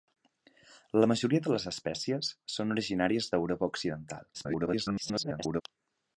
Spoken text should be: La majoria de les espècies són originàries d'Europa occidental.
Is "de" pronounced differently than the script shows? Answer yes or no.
no